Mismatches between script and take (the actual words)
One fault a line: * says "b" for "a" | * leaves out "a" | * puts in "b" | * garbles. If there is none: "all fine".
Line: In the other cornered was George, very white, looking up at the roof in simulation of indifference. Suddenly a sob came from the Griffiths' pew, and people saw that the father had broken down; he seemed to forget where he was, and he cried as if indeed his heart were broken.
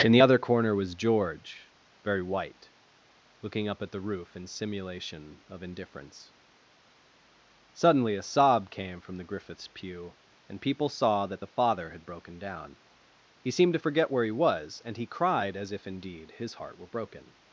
* says "corner" for "cornered"